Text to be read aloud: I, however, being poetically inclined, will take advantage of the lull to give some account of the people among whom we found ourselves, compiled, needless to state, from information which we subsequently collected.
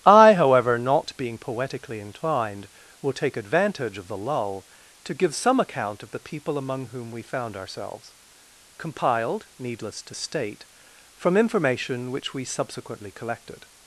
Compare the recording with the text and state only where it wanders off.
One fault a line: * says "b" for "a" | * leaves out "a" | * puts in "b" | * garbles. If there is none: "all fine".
* puts in "not"